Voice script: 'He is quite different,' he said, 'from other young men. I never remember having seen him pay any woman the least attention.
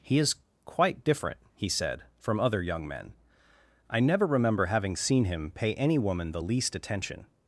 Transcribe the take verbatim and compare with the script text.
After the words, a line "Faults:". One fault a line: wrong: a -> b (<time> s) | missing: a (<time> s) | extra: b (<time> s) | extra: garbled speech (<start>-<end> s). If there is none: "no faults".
'He is quite different,' he said, 'from other young men. I never remember having seen him pay any woman the least attention.
Faults:
no faults